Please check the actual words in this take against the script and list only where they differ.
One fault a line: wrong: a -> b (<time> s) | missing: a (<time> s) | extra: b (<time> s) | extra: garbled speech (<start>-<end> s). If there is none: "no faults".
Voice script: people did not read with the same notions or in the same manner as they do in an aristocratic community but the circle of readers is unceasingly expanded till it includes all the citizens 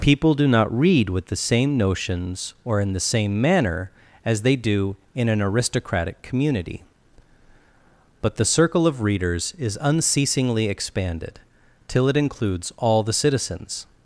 wrong: did -> do (0.3 s)